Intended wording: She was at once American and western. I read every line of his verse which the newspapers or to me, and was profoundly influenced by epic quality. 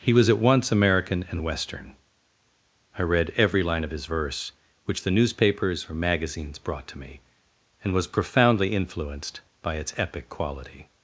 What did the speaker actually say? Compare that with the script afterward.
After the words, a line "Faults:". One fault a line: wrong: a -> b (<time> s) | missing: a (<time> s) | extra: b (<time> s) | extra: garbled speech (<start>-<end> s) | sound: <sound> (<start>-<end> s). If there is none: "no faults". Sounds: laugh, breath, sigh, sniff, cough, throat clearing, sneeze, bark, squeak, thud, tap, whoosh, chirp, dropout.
He was at once American and western. I read every line of his verse which the newspapers or magazines brought to me, and was profoundly influenced by its epic quality.
Faults:
wrong: She -> He (0.0 s)
extra: magazines brought (5.9 s)
extra: its (9.8 s)